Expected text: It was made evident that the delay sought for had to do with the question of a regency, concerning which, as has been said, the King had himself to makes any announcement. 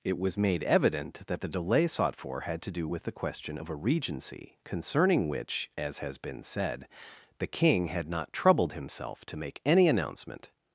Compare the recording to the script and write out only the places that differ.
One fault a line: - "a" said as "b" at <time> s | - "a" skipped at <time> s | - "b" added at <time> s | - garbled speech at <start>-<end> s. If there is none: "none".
- "not troubled" added at 8.1 s
- "makes" said as "make" at 9.4 s